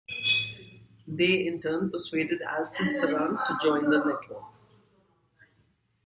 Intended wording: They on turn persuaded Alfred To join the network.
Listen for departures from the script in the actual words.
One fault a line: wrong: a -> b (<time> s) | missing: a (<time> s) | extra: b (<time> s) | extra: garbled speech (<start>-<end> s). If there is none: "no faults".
wrong: on -> in (1.4 s)
extra: Sarant (2.9 s)